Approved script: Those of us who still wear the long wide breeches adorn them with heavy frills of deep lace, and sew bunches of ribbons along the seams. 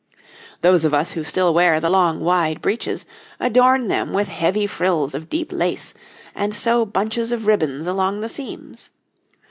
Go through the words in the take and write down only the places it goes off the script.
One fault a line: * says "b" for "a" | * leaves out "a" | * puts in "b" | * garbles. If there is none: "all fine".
all fine